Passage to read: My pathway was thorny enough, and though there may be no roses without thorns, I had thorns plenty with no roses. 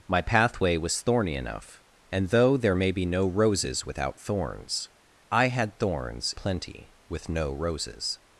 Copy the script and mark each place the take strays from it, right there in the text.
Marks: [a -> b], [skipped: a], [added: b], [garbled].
My pathway was thorny enough, and though there may be no roses without thorns, I had thorns plenty with no roses.